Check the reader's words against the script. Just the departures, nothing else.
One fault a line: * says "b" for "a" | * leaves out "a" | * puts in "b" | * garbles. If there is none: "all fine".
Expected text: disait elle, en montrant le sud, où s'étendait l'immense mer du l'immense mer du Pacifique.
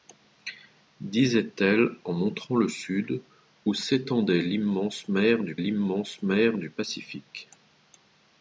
all fine